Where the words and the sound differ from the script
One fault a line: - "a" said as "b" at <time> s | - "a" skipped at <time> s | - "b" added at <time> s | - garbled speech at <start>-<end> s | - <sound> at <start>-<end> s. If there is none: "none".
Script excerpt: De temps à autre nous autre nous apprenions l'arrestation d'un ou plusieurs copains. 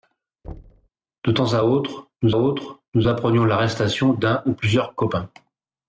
- thud at 0.4-0.9 s